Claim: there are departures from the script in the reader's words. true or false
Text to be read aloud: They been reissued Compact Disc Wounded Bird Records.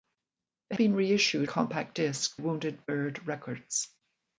false